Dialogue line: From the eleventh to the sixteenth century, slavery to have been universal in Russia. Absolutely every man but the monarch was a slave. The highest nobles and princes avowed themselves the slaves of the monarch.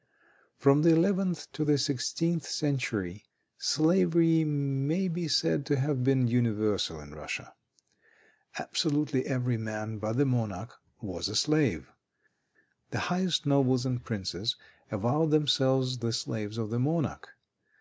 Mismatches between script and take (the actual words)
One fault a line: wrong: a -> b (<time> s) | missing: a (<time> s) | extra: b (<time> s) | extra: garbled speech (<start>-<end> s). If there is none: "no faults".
extra: may be said (4.5 s)